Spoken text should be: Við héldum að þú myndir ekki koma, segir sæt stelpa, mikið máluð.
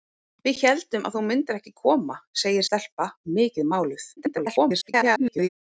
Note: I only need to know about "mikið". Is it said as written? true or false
true